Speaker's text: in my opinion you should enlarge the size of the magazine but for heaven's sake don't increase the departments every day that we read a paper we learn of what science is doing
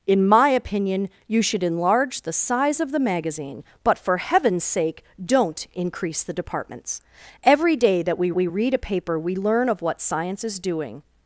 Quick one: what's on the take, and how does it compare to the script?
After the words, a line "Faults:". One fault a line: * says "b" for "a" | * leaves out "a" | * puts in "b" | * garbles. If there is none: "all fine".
in my opinion you should enlarge the size of the magazine but for heaven's sake don't increase the departments every day that we we read a paper we learn of what science is doing
Faults:
* puts in "we"